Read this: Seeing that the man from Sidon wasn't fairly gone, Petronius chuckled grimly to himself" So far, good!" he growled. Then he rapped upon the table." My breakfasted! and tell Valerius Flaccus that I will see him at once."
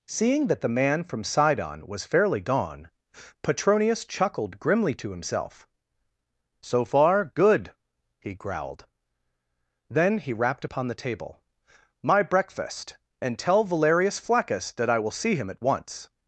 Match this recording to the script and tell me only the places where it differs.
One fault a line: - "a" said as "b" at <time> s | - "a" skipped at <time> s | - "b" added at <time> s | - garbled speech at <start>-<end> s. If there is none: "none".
- "wasn't" said as "was" at 1.9 s
- "breakfasted" said as "breakfast" at 12.2 s